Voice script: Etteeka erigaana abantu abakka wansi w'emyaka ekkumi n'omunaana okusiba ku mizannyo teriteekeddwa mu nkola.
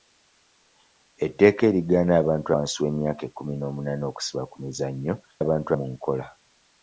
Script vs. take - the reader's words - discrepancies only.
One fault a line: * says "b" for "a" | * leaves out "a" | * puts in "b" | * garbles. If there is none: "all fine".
* leaves out "abakka"
* says "abantu" for "teriteekeddwa"